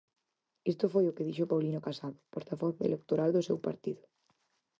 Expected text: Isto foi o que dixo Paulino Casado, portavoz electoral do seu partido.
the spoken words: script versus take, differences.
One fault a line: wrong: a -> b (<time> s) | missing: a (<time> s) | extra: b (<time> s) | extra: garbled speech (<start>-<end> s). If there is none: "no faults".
no faults